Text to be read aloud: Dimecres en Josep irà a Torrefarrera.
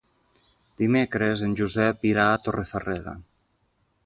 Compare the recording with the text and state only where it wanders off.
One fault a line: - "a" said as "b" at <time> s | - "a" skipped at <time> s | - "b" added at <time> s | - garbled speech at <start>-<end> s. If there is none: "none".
none